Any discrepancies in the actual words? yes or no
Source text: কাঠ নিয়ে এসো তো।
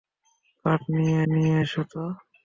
yes